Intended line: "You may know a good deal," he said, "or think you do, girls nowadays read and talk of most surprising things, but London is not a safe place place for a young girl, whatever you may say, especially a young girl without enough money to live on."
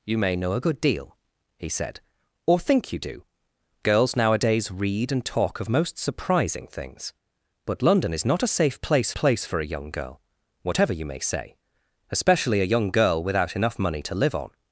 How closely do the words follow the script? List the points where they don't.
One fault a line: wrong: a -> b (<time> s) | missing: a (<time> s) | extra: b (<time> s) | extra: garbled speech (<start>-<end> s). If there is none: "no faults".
no faults